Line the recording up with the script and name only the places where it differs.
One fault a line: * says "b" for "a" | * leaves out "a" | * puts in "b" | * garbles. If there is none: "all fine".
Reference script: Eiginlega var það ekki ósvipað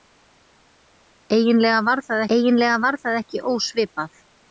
* puts in "eiginlega var það"